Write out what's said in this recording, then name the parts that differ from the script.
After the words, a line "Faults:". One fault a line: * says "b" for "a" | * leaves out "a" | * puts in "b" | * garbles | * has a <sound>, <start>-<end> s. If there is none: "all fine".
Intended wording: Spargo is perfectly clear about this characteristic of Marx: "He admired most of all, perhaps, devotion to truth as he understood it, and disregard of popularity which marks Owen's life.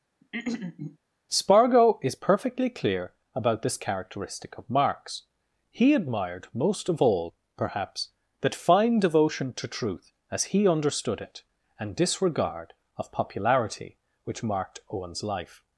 Spargo is perfectly clear about this characteristic of Marx: "He admired most of all, perhaps, that fine devotion to truth as he understood it, and disregard of popularity which marked Owen's life.
Faults:
* has a throat clearing, 0.2-1.0 s
* puts in "that fine"
* says "marked" for "marks"